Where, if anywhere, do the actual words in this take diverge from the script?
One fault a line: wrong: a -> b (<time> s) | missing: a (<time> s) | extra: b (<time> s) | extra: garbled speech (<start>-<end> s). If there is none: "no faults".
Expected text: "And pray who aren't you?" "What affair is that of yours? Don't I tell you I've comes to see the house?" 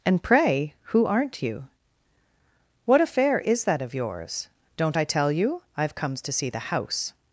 no faults